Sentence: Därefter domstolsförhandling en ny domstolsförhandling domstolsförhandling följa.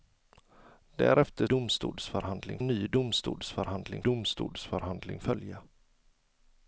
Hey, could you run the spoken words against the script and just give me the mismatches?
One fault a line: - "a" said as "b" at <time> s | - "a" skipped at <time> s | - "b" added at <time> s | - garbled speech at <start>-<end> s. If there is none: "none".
none